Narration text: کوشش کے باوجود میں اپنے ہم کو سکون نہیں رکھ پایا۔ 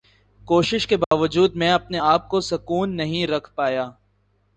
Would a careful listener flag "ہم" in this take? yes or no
yes